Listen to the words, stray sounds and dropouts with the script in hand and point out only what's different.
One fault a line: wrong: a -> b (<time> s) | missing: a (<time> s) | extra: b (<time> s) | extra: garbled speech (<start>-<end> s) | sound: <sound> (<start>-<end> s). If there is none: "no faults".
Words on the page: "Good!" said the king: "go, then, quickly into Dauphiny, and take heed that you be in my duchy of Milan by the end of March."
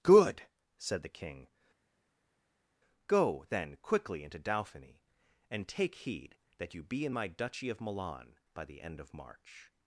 no faults